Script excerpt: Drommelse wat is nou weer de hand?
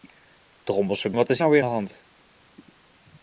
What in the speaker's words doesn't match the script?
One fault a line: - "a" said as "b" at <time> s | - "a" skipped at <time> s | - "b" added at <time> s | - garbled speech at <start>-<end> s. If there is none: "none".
none